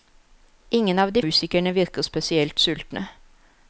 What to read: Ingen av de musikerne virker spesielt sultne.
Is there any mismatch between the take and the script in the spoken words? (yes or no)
no